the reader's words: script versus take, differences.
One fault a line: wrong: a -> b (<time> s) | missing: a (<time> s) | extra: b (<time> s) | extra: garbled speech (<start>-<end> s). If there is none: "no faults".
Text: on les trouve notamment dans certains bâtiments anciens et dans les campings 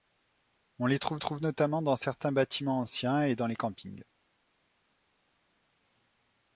extra: trouve (1.2 s)